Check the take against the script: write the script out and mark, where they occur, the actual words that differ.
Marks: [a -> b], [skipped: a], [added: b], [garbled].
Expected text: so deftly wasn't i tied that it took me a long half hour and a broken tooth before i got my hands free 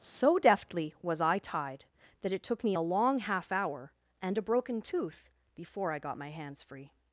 so deftly [wasn't -> was] i tied that it took me a long half hour and a broken tooth before i got my hands free